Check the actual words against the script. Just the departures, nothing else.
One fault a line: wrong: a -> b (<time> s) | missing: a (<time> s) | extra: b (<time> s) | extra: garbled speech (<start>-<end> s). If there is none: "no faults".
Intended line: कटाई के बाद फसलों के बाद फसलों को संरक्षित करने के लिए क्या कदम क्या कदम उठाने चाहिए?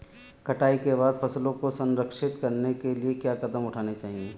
missing: के बाद फसलों (1.5 s)
missing: क्या कदम (3.7 s)